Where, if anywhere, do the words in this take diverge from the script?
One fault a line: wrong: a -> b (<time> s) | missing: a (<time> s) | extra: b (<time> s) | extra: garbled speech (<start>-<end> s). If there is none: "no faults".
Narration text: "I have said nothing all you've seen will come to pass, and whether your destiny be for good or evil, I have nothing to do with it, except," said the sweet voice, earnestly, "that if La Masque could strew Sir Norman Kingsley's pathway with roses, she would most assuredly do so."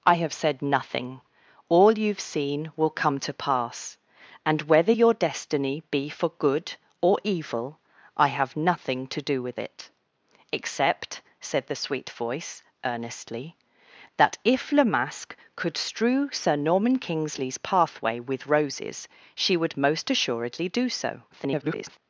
extra: garbled speech (21.3-22.0 s)